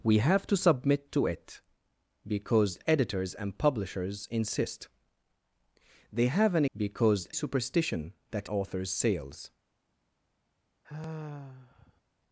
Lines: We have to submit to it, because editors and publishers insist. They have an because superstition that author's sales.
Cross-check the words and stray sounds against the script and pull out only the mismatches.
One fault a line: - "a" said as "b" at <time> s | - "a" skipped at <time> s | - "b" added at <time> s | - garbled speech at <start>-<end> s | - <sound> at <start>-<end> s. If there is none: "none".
- sigh at 10.8-12.0 s